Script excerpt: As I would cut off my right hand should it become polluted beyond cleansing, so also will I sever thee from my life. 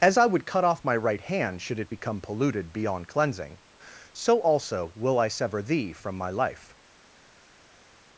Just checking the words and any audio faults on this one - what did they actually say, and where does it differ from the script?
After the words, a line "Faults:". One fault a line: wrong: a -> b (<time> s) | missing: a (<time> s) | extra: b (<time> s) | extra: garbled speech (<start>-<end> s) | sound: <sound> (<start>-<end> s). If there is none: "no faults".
As I would cut off my right hand should it become polluted beyond cleansing, so also will I sever thee from my life.
Faults:
no faults